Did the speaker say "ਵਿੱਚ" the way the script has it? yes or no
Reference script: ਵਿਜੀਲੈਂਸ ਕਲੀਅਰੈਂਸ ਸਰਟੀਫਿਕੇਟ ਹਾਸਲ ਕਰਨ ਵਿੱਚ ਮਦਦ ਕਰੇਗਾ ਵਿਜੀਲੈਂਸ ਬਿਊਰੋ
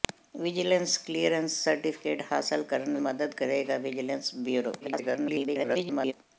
no